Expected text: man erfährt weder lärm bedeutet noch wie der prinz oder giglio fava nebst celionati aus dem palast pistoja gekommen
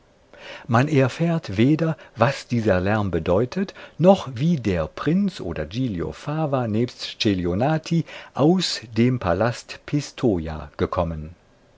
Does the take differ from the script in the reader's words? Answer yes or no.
yes